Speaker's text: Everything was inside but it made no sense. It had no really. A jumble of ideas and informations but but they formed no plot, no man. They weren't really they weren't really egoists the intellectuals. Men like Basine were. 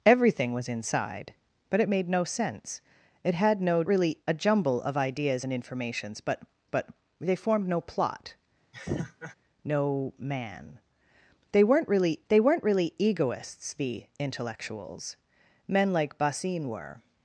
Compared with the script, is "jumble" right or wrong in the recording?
right